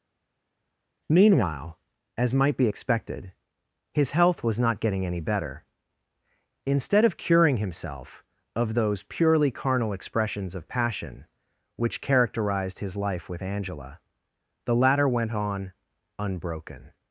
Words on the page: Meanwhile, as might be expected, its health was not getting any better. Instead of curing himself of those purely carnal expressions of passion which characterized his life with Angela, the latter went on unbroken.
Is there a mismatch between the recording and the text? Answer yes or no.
yes